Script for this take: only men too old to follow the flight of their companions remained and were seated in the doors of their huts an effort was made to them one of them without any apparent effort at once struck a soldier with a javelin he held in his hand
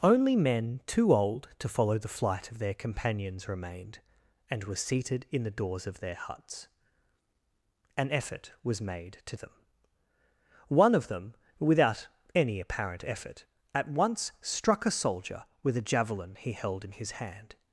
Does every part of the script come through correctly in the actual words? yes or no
yes